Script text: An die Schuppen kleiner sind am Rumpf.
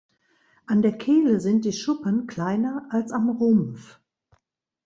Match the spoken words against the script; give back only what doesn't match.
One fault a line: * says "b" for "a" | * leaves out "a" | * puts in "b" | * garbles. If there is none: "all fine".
* puts in "der Kehle sind"
* says "als" for "sind"